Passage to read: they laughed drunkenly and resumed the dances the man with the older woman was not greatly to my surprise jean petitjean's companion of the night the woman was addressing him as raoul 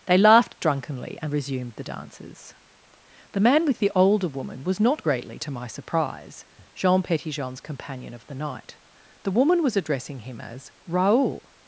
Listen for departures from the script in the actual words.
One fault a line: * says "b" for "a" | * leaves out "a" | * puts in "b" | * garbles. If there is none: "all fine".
all fine